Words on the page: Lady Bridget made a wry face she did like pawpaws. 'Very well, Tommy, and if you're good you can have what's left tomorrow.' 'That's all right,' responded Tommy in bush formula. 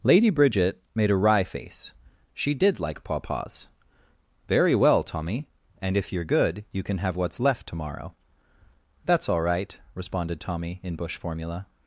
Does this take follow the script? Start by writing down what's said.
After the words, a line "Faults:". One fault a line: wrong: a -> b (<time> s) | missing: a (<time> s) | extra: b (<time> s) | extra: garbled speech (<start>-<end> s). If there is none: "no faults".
Lady Bridget made a wry face she did like pawpaws. 'Very well, Tommy, and if you're good you can have what's left tomorrow.' 'That's all right,' responded Tommy in bush formula.
Faults:
no faults